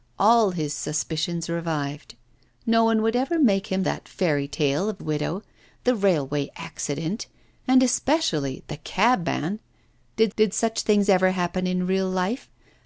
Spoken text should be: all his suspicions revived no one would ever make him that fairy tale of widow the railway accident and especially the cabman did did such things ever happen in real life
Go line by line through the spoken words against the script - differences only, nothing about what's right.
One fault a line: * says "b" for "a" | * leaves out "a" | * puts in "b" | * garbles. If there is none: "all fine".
all fine